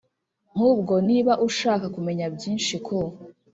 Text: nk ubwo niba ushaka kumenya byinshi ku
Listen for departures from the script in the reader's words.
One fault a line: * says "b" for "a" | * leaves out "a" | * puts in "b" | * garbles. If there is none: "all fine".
all fine